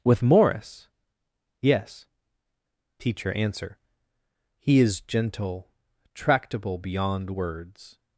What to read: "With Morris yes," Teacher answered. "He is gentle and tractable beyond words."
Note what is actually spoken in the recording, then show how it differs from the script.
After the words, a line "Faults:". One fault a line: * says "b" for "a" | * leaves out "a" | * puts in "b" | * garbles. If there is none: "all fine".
"With Morris yes," Teacher answer. "He is gentle tractable beyond words."
Faults:
* says "answer" for "answered"
* leaves out "and"